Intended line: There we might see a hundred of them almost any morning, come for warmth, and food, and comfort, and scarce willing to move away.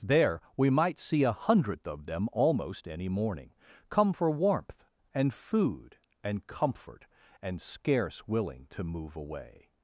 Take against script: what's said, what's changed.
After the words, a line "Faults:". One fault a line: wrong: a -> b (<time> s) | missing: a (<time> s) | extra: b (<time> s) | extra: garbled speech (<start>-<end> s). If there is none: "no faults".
There we might see a hundredth of them almost any morning, come for warmth, and food, and comfort, and scarce willing to move away.
Faults:
wrong: hundred -> hundredth (1.3 s)